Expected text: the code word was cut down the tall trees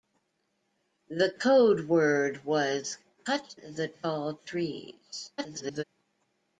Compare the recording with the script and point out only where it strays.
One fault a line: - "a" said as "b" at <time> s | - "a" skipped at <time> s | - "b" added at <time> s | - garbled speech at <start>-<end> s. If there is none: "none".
- "down" skipped at 3.5 s
- garbled speech at 5.4-5.8 s